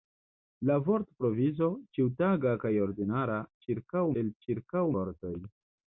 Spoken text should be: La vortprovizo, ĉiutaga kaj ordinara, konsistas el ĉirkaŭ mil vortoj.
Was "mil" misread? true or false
true